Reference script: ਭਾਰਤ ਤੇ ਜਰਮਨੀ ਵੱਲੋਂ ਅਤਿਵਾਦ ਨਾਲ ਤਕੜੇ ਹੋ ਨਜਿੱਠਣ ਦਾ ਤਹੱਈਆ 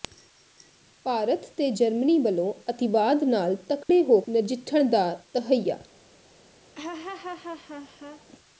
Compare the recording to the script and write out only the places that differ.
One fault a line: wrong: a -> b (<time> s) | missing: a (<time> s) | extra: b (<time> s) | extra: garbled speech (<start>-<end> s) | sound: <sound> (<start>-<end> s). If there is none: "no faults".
sound: dropout (3.8-3.9 s)
sound: laugh (6.8-8.3 s)